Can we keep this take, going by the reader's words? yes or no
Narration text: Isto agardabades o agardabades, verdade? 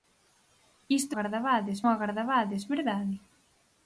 yes